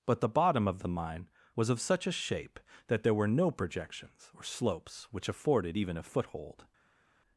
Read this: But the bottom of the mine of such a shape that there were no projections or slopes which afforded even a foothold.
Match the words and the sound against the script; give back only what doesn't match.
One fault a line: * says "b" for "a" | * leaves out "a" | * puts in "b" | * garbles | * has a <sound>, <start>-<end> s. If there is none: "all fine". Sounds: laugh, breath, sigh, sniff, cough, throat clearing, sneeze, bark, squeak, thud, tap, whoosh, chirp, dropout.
* puts in "was"